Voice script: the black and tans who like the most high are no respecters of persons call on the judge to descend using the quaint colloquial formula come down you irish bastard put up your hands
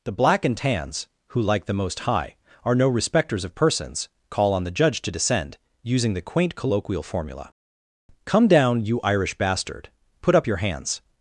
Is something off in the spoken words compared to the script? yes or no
no